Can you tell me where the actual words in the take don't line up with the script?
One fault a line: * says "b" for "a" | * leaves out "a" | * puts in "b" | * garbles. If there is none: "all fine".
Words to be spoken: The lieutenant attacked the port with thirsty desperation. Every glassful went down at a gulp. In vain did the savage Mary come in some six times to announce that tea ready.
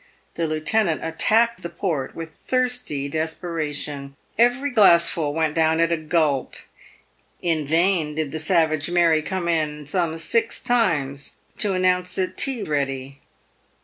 all fine